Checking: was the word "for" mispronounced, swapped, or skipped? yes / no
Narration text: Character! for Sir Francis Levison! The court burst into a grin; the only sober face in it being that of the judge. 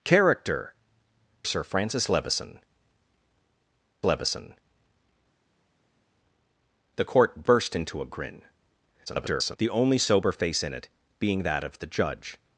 yes